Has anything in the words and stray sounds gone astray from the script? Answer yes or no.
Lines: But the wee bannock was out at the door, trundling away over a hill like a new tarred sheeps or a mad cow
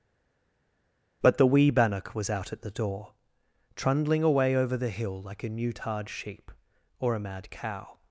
yes